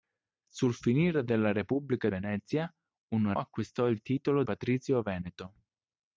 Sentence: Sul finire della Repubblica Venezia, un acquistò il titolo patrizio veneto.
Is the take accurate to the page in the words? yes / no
yes